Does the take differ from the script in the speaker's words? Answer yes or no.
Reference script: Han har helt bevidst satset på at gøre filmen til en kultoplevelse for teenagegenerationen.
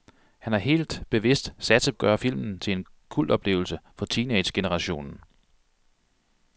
yes